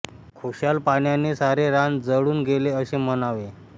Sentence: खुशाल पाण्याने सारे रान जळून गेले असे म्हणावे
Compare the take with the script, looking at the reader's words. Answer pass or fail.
pass